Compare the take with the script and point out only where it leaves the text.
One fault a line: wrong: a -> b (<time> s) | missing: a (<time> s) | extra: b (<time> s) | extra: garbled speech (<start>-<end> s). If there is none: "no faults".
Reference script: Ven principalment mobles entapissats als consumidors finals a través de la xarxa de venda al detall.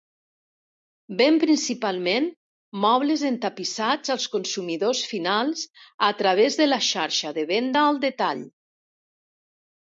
no faults